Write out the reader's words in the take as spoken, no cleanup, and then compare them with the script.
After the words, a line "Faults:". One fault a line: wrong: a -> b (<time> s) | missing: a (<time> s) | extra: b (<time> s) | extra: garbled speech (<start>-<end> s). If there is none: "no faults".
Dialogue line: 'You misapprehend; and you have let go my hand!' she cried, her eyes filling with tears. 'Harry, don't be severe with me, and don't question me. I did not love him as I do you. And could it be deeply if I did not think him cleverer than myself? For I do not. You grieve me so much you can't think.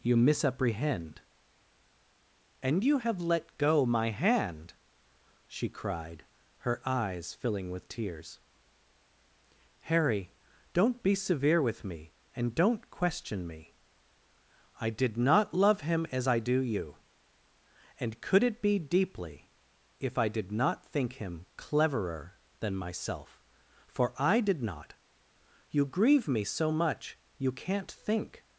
'You misapprehend; and you have let go my hand!' she cried, her eyes filling with tears. 'Harry, don't be severe with me, and don't question me. I did not love him as I do you. And could it be deeply if I did not think him cleverer than myself? For I did not. You grieve me so much you can't think.
Faults:
wrong: do -> did (24.4 s)